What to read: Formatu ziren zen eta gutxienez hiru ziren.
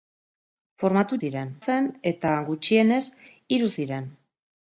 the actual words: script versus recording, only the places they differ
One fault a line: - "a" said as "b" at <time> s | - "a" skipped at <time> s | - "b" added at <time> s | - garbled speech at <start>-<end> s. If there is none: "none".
none